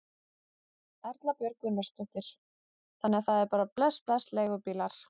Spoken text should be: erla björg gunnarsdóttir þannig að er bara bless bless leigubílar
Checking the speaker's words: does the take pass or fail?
fail